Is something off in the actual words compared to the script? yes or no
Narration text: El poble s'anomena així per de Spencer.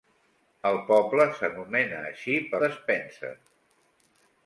no